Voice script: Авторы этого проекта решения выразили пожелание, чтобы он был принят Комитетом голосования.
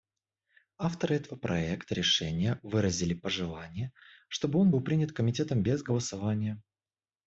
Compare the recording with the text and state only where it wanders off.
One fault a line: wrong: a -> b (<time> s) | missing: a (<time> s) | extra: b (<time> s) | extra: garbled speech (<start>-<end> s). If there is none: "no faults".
extra: без (5.6 s)